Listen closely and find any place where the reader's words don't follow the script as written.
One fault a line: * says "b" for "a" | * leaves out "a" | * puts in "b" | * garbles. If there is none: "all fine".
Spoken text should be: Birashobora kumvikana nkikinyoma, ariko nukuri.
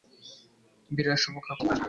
* leaves out "kumvikana nkikinyoma ariko"